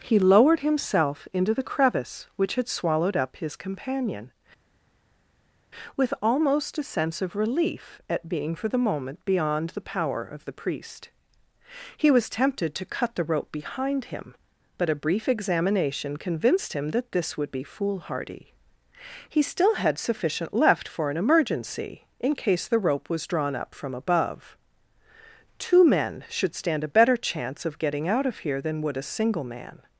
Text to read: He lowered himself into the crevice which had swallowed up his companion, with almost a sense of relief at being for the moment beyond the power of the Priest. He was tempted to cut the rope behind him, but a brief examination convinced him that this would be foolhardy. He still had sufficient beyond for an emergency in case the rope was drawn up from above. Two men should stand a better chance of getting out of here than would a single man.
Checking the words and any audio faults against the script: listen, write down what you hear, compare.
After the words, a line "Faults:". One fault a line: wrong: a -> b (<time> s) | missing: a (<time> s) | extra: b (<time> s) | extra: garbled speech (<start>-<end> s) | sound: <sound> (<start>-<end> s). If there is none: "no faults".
He lowered himself into the crevice which had swallowed up his companion, with almost a sense of relief at being for the moment beyond the power of the Priest. He was tempted to cut the rope behind him, but a brief examination convinced him that this would be foolhardy. He still had sufficient left for an emergency in case the rope was drawn up from above. Two men should stand a better chance of getting out of here than would a single man.
Faults:
wrong: beyond -> left (20.5 s)